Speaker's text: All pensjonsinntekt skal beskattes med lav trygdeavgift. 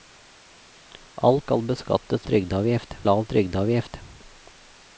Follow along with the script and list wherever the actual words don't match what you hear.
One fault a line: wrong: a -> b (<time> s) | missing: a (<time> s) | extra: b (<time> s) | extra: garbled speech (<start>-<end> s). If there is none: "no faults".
missing: pensjonsinntekt (1.4 s)
wrong: med -> trygdeavgift (2.3 s)